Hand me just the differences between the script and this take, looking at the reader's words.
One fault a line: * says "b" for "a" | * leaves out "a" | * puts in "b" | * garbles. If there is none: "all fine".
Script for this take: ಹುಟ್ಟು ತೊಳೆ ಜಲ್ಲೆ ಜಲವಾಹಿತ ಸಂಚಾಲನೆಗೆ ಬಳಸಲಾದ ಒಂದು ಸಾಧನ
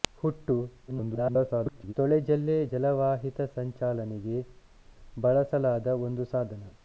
* garbles